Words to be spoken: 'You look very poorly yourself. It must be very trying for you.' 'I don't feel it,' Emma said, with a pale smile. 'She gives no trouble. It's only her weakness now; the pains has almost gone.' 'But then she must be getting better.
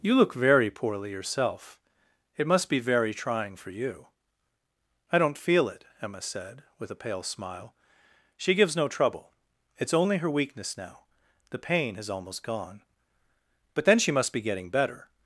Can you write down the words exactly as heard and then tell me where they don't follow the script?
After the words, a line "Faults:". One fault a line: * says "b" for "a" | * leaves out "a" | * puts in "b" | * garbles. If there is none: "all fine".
'You look very poorly yourself. It must be very trying for you.' 'I don't feel it,' Emma said, with a pale smile. 'She gives no trouble. It's only her weakness now; the pain has almost gone.' 'But then she must be getting better.
Faults:
* says "pain" for "pains"